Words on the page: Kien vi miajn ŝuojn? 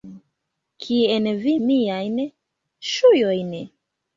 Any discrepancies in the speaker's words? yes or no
no